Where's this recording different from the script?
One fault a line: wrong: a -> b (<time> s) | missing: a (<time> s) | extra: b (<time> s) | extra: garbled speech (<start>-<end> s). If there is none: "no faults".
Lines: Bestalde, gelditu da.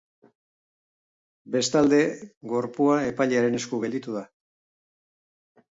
extra: gorpua epailearen esku (2.5 s)